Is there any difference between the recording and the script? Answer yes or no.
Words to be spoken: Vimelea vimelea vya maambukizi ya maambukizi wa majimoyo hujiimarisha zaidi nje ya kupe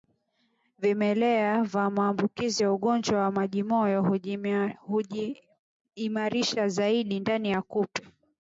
yes